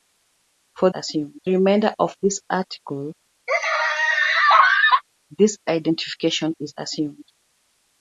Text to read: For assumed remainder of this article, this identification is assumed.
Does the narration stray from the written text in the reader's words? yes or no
no